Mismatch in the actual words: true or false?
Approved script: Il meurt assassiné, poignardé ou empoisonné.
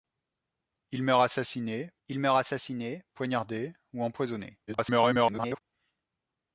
true